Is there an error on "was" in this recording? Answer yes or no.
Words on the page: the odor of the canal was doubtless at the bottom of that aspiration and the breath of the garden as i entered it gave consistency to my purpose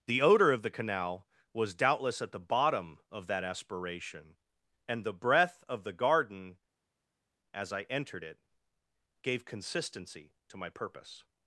no